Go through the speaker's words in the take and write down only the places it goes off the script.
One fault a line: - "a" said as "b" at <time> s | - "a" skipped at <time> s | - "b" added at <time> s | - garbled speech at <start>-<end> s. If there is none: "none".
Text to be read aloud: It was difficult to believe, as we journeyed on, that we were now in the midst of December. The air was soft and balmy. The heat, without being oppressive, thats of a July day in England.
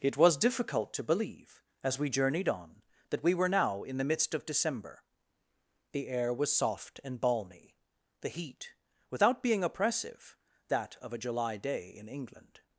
- "thats" said as "that" at 10.7 s